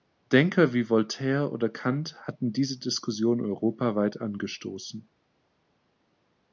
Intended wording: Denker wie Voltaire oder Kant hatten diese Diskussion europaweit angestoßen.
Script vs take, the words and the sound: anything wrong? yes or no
no